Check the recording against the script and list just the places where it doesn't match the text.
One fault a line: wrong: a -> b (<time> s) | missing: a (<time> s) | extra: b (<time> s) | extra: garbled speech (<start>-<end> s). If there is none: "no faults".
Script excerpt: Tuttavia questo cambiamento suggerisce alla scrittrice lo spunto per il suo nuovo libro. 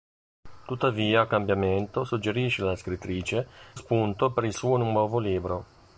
missing: questo (1.3 s)
missing: lo (3.5 s)